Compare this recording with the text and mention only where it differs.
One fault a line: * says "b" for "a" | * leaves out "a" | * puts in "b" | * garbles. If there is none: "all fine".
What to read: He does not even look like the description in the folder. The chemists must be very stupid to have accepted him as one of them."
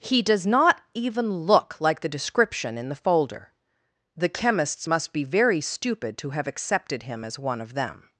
all fine